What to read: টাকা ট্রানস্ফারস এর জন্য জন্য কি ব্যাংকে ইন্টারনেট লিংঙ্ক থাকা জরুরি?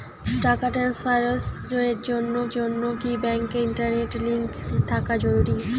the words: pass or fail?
pass